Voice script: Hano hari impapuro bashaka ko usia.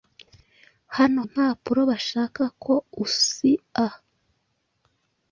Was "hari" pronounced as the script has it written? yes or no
no